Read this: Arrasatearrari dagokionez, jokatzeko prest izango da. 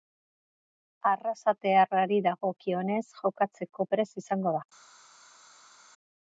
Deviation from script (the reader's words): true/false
false